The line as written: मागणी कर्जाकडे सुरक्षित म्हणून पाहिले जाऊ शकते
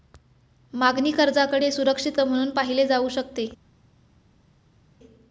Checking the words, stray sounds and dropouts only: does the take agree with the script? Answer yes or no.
yes